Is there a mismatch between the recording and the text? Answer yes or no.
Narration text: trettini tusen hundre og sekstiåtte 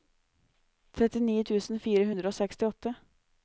yes